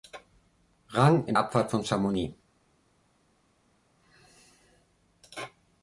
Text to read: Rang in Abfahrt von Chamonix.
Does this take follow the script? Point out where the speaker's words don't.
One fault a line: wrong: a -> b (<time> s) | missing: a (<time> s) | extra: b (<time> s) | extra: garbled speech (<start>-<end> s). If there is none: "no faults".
no faults